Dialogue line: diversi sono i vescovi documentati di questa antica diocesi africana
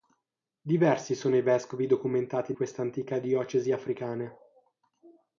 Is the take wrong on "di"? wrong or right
wrong